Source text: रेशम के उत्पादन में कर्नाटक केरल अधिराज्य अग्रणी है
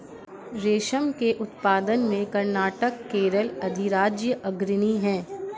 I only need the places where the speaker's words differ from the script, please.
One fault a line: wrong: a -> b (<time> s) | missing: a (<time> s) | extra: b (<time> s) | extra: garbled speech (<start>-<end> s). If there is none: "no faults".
no faults